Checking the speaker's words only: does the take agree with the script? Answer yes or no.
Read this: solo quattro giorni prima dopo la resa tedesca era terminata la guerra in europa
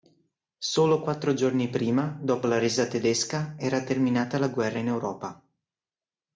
yes